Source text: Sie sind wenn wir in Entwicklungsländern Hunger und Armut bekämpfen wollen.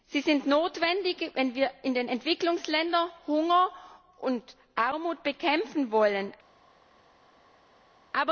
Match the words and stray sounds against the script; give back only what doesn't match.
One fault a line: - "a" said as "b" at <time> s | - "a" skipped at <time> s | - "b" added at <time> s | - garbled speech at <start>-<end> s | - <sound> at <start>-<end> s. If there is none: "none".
- "notwendig" added at 0.5 s
- "den" added at 1.9 s